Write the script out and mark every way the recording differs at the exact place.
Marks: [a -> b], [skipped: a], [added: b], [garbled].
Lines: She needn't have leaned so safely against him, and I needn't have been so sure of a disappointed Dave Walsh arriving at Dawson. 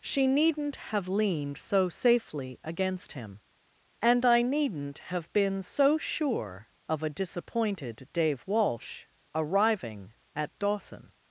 She needn't have leaned so safely against him, and I needn't have been so sure of a disappointed Dave Walsh arriving at Dawson.